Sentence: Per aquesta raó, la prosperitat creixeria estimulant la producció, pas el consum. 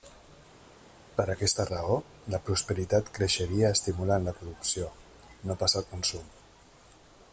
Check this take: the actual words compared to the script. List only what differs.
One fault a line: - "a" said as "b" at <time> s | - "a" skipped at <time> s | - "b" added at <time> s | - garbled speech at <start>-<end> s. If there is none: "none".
- "no" added at 5.5 s